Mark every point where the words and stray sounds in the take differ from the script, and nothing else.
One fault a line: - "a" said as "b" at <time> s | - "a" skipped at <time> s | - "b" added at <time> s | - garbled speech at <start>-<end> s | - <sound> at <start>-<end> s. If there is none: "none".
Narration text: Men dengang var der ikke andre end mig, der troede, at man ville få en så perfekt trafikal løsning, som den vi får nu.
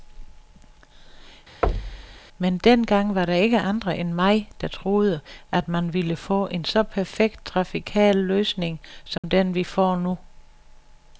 - thud at 1.6-2.2 s
- dropout at 9.2-9.2 s